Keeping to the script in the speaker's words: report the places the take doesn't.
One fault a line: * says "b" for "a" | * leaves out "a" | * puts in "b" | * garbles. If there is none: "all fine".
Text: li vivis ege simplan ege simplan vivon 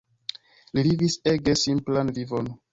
* leaves out "ege simplan"